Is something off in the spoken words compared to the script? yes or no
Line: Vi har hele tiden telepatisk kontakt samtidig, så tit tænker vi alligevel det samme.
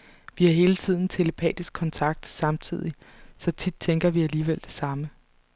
no